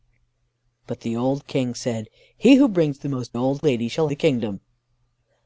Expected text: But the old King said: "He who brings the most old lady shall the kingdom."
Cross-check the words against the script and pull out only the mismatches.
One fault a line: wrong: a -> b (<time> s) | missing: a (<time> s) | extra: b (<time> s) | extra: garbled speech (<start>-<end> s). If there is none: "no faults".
no faults